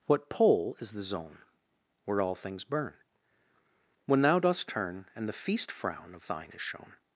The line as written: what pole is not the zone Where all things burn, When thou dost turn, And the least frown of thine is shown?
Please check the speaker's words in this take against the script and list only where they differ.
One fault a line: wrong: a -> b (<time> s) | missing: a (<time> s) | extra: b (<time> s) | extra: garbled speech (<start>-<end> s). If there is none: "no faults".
missing: not (0.9 s)
wrong: least -> feast (5.3 s)